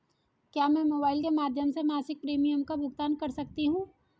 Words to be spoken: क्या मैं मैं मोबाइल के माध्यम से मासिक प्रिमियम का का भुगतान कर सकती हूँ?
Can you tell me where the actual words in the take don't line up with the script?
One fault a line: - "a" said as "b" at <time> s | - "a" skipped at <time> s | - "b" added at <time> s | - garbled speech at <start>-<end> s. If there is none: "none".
- "मैं" skipped at 0.8 s
- "का" skipped at 2.8 s